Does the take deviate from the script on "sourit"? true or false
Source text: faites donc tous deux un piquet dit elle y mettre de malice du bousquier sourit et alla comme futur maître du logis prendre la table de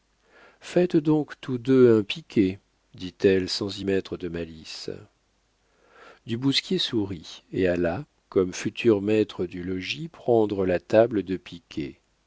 false